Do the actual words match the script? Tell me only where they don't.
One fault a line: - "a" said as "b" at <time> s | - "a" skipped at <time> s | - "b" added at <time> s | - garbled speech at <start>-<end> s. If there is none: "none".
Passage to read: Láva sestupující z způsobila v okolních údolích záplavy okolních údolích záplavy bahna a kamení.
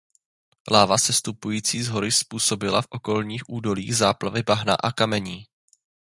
- "hory" added at 1.9 s
- "okolních údolích záplavy" skipped at 4.4 s